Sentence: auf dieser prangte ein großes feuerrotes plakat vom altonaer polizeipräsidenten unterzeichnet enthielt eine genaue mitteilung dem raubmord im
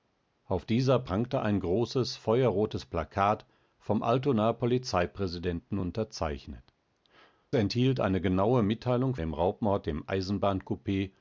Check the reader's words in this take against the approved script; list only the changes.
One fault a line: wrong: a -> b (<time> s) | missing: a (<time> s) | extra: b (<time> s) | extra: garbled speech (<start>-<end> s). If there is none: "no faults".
no faults